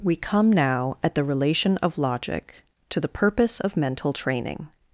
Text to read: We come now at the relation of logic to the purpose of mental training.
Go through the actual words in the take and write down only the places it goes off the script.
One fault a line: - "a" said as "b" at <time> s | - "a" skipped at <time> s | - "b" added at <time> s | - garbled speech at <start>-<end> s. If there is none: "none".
none